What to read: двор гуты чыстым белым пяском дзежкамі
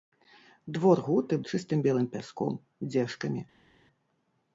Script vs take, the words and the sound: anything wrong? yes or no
no